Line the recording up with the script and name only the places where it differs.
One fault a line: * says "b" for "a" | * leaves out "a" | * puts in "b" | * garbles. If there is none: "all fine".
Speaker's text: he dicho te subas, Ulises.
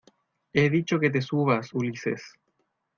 * puts in "que"